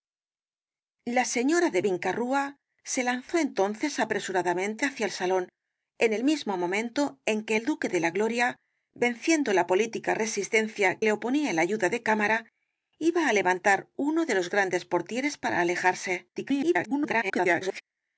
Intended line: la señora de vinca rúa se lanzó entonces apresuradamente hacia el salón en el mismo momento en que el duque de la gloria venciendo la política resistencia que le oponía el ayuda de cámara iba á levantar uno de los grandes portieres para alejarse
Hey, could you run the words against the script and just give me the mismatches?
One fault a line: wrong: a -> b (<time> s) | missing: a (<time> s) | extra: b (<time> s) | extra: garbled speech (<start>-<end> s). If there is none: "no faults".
missing: que (11.0 s)
extra: garbled speech (16.4-17.8 s)